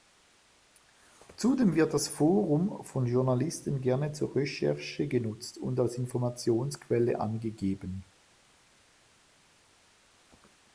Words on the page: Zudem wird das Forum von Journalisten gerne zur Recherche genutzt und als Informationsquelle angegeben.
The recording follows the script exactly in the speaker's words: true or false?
true